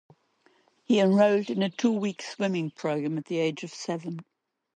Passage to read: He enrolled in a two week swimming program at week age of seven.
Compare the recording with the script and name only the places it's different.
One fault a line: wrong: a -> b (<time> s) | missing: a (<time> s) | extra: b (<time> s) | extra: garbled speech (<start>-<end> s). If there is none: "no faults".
wrong: week -> the (3.2 s)